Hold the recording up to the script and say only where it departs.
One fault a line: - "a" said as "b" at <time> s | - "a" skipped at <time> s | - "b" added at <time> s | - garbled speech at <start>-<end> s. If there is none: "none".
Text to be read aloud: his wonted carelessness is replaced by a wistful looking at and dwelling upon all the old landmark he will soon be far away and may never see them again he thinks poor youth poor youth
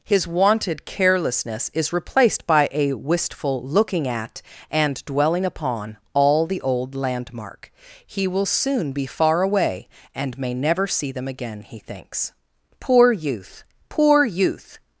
none